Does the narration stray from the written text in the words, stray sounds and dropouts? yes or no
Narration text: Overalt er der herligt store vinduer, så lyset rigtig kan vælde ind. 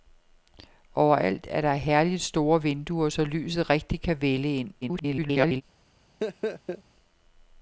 yes